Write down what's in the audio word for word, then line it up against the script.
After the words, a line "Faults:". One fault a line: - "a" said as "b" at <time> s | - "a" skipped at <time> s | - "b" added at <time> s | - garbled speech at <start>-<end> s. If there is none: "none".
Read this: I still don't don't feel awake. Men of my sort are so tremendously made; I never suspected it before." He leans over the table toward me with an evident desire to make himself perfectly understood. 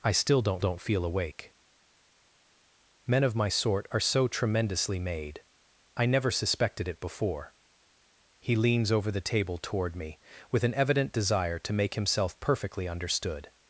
I still don't don't feel awake. Men of my sort are so tremendously made; I never suspected it before." He leans over the table toward me with an evident desire to make himself perfectly understood.
Faults:
none